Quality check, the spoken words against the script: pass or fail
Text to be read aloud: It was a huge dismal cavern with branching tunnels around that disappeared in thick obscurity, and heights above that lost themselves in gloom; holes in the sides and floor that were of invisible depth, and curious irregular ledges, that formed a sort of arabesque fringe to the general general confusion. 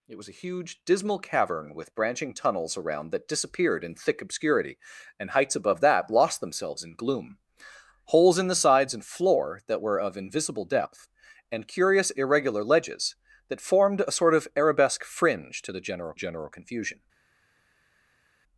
pass